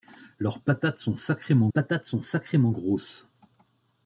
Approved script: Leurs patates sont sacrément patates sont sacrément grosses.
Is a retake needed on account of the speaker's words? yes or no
no